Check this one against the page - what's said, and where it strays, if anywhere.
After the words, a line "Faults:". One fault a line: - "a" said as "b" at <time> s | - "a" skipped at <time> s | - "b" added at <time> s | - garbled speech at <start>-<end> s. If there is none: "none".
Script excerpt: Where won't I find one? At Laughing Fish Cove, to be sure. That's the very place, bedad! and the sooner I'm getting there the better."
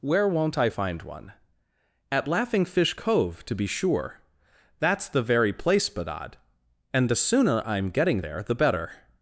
Where won't I find one? At Laughing Fish Cove, to be sure. That's the very place, bedad! and the sooner I'm getting there the better."
Faults:
none